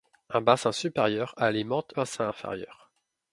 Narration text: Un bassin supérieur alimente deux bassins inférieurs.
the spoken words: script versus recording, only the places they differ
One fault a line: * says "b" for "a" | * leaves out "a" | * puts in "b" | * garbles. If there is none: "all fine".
* leaves out "deux"